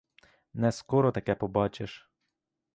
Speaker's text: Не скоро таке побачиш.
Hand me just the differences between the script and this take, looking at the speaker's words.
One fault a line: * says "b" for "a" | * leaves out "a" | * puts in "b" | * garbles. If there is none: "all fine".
all fine